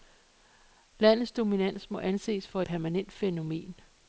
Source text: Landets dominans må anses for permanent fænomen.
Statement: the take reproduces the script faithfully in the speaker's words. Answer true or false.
true